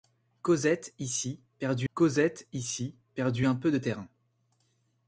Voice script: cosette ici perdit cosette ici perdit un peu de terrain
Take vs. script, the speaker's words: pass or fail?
pass